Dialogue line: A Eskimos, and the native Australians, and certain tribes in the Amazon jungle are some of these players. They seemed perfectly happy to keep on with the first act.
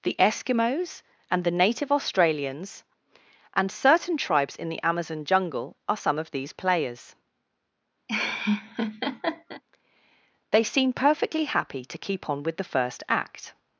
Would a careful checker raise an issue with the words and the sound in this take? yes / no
yes